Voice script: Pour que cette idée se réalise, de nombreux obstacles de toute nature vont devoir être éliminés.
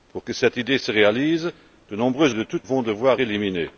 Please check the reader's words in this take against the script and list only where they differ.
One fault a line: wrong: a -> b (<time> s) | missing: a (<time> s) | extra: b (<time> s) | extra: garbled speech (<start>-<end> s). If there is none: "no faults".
missing: obstacles (2.4 s)
missing: nature (2.7 s)
missing: être (3.2 s)